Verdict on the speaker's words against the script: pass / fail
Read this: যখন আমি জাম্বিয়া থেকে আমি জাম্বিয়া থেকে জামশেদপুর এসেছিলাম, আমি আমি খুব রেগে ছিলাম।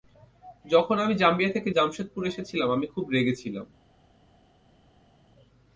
fail